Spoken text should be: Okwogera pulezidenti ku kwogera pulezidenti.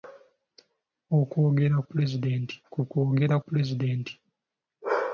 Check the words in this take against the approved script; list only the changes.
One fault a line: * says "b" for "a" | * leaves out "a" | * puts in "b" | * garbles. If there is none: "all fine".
all fine